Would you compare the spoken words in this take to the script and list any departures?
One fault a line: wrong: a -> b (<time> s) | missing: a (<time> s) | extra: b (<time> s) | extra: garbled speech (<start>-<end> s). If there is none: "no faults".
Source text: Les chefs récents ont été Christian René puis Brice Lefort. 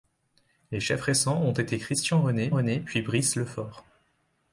extra: René (2.5 s)